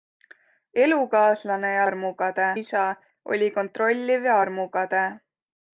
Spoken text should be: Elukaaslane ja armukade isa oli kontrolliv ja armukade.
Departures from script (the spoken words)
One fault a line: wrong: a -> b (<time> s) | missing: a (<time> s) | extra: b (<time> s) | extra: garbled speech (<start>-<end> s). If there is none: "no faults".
no faults